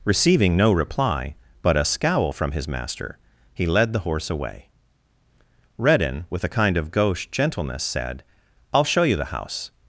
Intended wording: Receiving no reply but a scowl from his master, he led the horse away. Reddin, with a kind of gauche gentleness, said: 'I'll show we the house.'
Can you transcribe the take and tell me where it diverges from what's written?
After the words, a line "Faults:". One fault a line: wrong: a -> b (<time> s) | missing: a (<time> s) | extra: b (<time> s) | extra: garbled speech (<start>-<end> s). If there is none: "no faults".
Receiving no reply but a scowl from his master, he led the horse away. Reddin, with a kind of gauche gentleness, said: 'I'll show you the house.'
Faults:
wrong: we -> you (9.0 s)